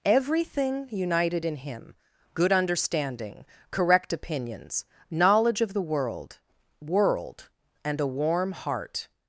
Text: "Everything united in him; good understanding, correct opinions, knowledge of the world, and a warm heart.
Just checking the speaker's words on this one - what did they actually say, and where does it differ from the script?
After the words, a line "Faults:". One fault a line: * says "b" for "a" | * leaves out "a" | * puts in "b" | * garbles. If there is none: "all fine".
"Everything united in him; good understanding, correct opinions, knowledge of the world world, and a warm heart.
Faults:
* puts in "world"